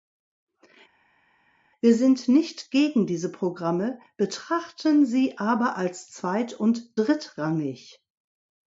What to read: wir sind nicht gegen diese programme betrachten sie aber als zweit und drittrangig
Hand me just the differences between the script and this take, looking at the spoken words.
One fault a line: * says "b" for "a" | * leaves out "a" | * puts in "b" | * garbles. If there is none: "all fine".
all fine